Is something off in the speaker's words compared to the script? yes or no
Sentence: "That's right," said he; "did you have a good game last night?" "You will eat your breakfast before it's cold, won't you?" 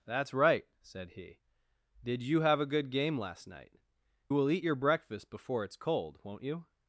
yes